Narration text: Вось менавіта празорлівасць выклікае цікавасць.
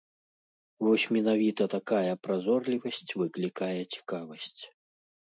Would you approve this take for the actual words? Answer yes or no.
no